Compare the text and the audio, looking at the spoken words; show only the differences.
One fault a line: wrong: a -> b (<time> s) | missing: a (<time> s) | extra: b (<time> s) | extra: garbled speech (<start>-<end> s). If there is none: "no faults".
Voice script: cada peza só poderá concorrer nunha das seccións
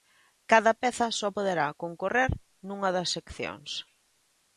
no faults